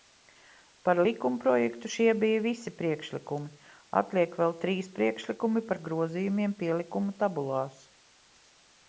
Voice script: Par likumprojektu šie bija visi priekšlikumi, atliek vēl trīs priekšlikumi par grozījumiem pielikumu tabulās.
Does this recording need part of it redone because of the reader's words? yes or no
no